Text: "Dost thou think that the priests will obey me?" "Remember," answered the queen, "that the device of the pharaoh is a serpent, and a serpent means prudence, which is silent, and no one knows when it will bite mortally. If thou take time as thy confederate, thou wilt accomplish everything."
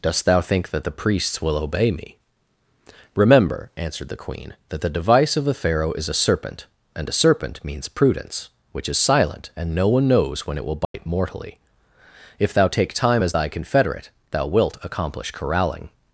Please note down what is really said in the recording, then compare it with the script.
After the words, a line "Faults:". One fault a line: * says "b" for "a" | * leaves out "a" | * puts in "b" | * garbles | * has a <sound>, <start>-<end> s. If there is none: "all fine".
"Dost thou think that the priests will obey me?" "Remember," answered the queen, "that the device of the pharaoh is a serpent, and a serpent means prudence, which is silent, and no one knows when it will bite mortally. If thou take time as thy confederate, thou wilt accomplish corralling."
Faults:
* has a dropout, 10.8-10.9 s
* says "corralling" for "everything"